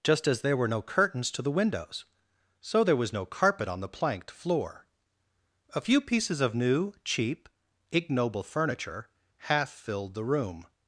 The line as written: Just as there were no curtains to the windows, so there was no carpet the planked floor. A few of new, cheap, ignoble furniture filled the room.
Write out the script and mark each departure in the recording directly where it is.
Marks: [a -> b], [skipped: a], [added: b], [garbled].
Just as there were no curtains to the windows, so there was no carpet [added: on] the planked floor. A few [added: pieces] of new, cheap, ignoble furniture [added: half] filled the room.